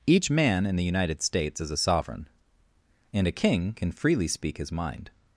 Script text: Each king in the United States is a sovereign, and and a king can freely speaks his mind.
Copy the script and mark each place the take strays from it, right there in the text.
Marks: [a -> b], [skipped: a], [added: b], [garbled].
Each [king -> man] in the United States is a sovereign, and [skipped: and] a king can freely [speaks -> speak] his mind.